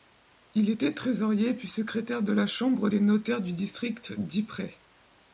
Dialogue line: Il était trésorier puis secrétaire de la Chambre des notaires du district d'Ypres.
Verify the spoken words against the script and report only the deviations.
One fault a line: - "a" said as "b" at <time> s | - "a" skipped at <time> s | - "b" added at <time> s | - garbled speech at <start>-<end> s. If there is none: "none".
none